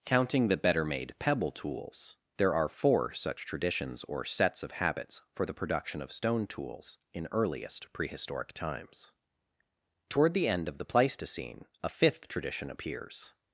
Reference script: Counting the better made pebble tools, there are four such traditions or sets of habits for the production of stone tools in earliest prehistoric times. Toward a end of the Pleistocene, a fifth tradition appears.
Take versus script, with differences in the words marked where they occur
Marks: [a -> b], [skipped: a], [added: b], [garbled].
Counting the better made pebble tools, there are four such traditions or sets of habits for the production of stone tools in earliest prehistoric times. Toward [a -> the] end of the Pleistocene, a fifth tradition appears.